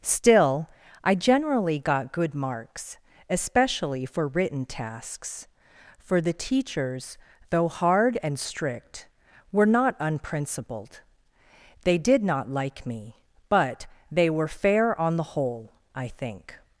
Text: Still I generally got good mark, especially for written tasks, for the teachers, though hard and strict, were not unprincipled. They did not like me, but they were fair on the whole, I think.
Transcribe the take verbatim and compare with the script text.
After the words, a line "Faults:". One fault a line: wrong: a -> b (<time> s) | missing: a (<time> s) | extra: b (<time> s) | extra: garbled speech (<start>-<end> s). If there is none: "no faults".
Still I generally got good marks, especially for written tasks, for the teachers, though hard and strict, were not unprincipled. They did not like me, but they were fair on the whole, I think.
Faults:
wrong: mark -> marks (2.4 s)